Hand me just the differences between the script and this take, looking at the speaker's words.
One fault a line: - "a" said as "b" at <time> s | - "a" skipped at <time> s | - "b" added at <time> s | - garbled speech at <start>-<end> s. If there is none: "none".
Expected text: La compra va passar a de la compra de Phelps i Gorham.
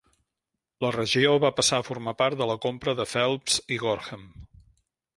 - "compra" said as "regió" at 0.9 s
- "formar part" added at 1.9 s